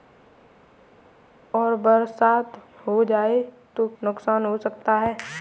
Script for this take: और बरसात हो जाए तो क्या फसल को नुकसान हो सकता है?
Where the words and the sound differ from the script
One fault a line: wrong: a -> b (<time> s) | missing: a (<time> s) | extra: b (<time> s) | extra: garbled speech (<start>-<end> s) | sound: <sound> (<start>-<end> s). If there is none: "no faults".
missing: क्या फसल को (3.9 s)